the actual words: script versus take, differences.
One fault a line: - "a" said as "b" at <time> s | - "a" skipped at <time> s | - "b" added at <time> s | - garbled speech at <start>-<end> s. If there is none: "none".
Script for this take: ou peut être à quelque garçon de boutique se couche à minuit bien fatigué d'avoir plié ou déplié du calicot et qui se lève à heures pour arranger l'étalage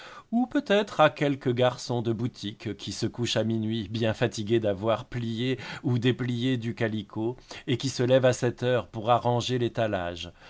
- "qui" added at 2.8 s
- "sept" added at 8.3 s